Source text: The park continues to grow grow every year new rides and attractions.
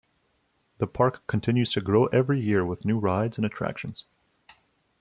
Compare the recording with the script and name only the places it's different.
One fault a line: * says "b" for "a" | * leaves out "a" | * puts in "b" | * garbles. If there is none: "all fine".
* leaves out "grow"
* puts in "with"